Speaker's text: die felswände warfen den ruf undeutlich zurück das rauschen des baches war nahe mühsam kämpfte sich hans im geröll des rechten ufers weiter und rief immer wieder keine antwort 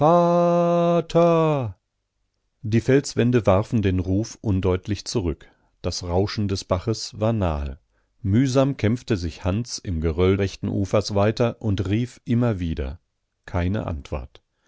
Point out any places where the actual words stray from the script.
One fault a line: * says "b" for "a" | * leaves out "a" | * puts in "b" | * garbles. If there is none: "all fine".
* leaves out "des"